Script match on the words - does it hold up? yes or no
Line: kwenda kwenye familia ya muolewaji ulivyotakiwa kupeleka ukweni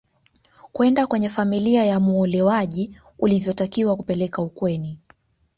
yes